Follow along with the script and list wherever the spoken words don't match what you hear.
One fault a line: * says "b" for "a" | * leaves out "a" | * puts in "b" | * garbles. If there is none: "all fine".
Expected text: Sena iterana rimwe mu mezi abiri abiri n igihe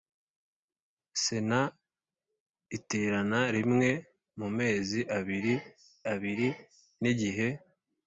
all fine